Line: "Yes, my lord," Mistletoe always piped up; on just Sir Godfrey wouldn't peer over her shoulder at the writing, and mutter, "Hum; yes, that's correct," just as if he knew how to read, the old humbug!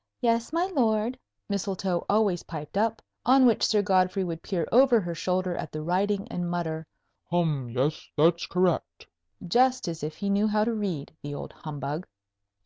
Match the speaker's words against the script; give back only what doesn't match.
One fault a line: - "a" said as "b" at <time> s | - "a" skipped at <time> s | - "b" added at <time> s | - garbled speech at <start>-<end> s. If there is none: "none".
- "just" said as "which" at 3.5 s
- "wouldn't" said as "would" at 4.2 s